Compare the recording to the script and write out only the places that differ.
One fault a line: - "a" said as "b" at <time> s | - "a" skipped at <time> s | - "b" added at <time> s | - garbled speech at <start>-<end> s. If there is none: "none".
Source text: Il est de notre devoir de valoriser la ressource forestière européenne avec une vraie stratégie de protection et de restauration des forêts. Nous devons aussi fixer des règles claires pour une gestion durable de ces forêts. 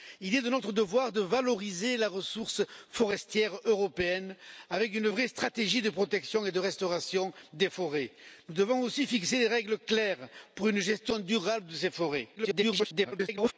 - garbled speech at 12.4-13.5 s